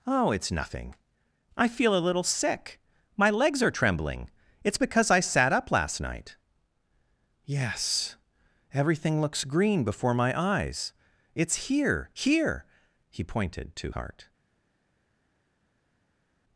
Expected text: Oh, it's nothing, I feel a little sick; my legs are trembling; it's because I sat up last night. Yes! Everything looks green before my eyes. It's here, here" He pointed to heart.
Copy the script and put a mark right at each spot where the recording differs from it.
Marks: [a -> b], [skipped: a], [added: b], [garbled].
Oh, it's nothing, I feel a little sick; my legs are trembling; it's because I sat up last night. Yes! Everything looks green before my eyes. It's here, here" He pointed to heart.